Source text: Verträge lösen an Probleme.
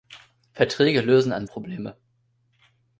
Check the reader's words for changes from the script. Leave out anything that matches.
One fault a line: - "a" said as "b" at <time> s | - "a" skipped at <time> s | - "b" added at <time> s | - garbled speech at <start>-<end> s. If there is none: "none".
none